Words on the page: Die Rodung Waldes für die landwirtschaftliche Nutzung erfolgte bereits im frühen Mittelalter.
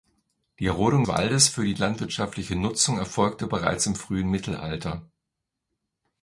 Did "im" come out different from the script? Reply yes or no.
no